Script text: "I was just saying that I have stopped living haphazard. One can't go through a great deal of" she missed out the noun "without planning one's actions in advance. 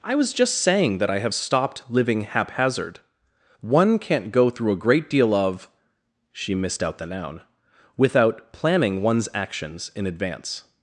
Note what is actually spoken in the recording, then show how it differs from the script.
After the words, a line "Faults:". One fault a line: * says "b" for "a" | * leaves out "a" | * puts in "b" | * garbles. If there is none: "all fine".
"I was just saying that I have stopped living haphazard. One can't go through a great deal of" she missed out the noun "without planning one's actions in advance.
Faults:
all fine